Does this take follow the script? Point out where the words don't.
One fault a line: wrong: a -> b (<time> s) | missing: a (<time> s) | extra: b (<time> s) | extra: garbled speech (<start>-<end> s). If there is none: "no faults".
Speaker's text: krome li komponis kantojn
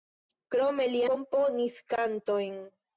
no faults